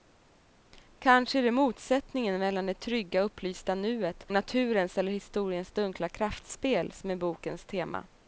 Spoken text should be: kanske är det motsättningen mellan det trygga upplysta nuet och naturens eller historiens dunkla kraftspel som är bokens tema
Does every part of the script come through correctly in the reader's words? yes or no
no